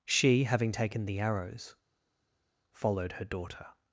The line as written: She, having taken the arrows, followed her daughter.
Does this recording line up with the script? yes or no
yes